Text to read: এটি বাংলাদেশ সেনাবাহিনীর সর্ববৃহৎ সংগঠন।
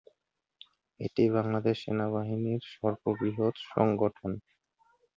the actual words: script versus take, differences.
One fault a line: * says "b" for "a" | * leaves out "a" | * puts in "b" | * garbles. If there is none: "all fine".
all fine